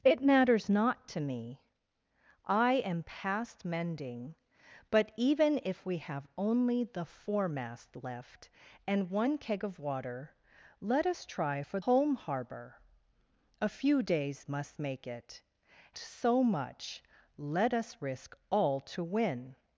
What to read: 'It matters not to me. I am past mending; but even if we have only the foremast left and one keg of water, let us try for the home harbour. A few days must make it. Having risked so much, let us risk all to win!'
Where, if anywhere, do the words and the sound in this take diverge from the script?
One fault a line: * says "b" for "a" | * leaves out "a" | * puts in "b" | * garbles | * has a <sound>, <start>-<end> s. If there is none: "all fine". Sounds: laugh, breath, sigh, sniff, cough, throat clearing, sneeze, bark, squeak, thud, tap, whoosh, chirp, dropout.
* leaves out "the"
* leaves out "Having risked"